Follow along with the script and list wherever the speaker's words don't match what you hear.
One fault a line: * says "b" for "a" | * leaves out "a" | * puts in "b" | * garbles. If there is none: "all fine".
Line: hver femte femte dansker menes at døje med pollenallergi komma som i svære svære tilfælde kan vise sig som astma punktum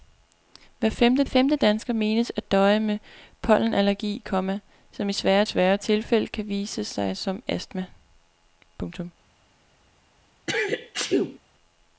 all fine